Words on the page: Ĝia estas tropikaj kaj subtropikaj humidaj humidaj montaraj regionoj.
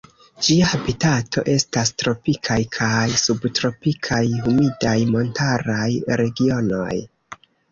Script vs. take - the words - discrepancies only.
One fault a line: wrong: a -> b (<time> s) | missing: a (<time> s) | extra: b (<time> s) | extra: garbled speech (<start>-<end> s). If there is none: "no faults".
extra: habitato (0.7 s)
missing: humidaj (5.0 s)